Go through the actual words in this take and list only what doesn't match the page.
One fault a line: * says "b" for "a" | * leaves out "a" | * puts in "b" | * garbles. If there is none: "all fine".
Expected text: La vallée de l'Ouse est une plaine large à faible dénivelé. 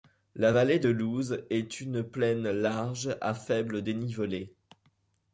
all fine